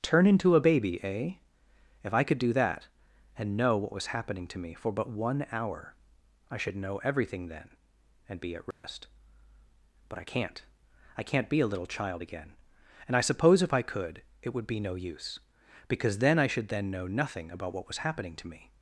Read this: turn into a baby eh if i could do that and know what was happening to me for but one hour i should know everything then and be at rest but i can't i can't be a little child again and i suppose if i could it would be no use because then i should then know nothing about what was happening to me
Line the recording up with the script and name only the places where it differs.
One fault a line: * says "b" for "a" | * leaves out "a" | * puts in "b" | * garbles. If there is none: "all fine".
all fine